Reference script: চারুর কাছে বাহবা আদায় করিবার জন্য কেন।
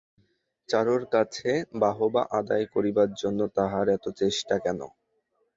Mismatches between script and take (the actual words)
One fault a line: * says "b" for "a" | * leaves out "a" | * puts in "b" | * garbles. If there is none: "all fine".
* puts in "তাহার এত চেষ্টা"